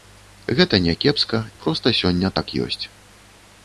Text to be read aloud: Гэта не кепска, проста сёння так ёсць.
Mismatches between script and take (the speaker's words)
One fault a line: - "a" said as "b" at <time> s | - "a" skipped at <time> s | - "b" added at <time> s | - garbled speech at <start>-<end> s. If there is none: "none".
none